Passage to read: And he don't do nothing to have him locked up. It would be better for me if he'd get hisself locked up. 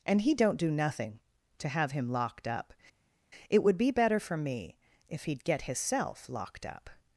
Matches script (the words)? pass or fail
pass